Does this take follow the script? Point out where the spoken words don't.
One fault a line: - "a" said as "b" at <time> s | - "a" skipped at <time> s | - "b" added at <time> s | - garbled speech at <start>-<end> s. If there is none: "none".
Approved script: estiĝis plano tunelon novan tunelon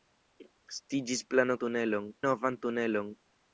none